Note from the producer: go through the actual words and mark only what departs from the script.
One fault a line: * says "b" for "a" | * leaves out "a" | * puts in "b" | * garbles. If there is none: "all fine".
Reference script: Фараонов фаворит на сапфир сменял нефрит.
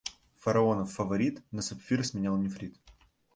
all fine